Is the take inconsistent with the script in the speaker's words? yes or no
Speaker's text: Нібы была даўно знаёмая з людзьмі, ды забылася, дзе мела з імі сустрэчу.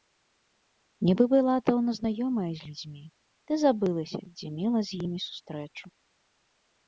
no